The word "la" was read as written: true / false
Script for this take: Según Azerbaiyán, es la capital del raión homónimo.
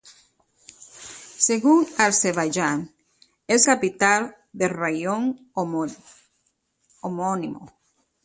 false